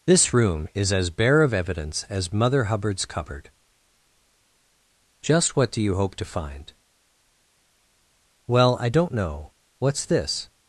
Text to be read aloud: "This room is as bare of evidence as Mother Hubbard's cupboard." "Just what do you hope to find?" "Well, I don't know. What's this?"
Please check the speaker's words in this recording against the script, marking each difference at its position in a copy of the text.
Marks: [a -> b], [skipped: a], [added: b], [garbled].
"This room is as bare of evidence as Mother Hubbard's cupboard." "Just what do you hope to find?" "Well, I don't know. What's this?"